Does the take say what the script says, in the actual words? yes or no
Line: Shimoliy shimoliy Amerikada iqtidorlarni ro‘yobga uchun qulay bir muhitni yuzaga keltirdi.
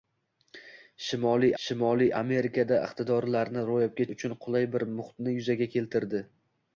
yes